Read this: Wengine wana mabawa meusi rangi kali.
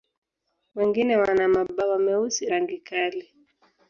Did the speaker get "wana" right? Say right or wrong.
right